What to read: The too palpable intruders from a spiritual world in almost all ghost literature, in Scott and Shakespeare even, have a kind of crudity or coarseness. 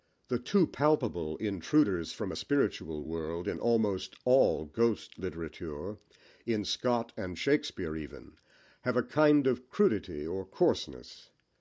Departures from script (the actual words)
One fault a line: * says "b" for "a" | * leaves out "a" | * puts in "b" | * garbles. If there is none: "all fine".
all fine